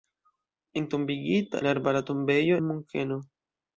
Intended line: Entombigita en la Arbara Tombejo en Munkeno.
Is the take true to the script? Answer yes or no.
no